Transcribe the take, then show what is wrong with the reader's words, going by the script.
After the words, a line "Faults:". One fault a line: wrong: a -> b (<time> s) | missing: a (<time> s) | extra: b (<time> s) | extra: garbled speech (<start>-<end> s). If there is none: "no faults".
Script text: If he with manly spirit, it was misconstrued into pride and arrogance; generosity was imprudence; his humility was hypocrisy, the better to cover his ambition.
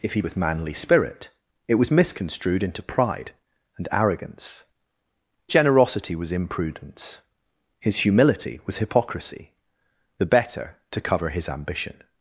If he with manly spirit, it was misconstrued into pride and arrogance; generosity was imprudence; his humility was hypocrisy, the better to cover his ambition.
Faults:
no faults